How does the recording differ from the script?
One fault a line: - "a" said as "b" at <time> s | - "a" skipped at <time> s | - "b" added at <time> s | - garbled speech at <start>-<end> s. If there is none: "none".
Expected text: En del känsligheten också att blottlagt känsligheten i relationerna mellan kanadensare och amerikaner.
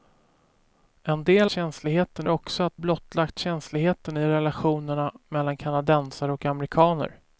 none